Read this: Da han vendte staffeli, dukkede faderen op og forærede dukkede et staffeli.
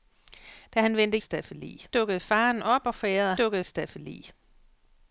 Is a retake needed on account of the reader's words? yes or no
no